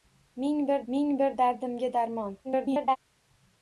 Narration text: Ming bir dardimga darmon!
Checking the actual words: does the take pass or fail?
fail